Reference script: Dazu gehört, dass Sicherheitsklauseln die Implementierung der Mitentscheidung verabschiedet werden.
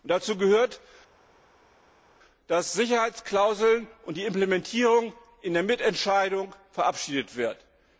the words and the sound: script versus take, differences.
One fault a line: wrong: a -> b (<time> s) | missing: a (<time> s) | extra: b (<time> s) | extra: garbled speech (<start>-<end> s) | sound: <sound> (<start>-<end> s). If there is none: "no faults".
extra: und (4.0 s)
extra: in (5.4 s)